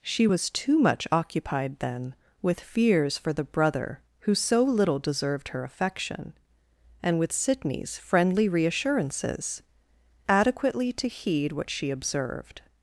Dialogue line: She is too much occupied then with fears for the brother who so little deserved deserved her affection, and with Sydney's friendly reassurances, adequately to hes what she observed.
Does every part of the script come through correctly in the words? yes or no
no